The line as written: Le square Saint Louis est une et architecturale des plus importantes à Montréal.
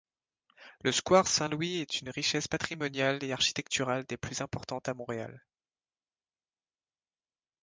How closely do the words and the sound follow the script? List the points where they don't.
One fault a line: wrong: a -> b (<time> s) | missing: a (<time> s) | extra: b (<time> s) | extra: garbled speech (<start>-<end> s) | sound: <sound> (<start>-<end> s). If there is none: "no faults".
extra: richesse patrimoniale (2.1 s)